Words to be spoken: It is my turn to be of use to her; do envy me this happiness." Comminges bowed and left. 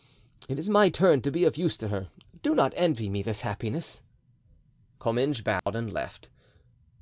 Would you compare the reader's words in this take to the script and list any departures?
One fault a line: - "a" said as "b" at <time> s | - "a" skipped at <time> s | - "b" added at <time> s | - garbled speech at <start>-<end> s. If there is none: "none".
- "not" added at 2.5 s